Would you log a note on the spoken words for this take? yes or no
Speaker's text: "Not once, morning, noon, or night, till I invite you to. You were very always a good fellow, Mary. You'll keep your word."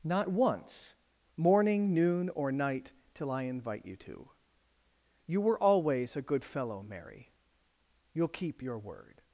yes